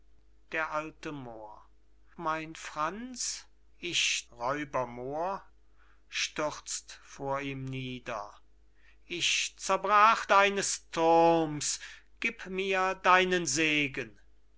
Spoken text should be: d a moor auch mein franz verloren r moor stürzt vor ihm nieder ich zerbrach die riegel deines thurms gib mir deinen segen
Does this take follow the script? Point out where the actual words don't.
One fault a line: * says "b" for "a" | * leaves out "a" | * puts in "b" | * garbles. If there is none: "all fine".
* leaves out "auch"
* says "ich" for "verloren"
* leaves out "die riegel"